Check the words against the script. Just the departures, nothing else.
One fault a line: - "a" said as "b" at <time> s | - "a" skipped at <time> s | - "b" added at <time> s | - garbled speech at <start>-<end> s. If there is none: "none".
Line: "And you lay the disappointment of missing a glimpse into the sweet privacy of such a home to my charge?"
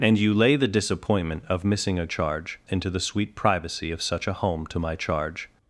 - "glimpse" said as "charge" at 2.1 s